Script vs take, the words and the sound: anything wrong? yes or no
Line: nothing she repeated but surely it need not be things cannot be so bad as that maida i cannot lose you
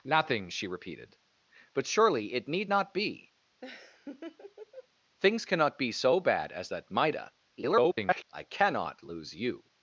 yes